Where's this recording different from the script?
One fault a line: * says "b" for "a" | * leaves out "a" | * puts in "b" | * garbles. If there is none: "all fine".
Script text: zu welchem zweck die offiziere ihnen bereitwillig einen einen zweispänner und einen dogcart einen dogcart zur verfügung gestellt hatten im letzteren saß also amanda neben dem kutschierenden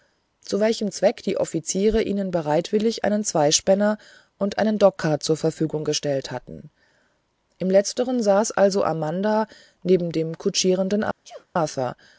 * leaves out "einen"
* leaves out "einen dogcart"